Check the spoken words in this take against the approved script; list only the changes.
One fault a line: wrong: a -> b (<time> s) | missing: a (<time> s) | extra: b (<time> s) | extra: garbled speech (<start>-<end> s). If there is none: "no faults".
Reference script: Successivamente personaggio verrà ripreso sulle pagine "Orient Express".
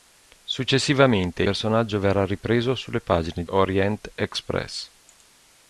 no faults